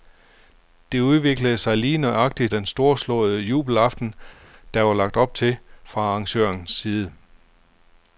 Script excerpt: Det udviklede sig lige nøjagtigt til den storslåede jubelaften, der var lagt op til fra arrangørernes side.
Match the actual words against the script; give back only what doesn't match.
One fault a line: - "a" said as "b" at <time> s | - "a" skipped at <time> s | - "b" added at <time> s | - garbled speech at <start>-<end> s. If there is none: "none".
- "til" skipped at 2.5 s